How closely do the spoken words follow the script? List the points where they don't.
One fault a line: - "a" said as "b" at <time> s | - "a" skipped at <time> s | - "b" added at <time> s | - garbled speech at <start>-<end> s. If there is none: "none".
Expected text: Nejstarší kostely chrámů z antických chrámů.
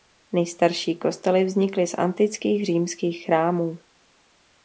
- "chrámů" said as "vznikly" at 1.4 s
- "římských" added at 2.6 s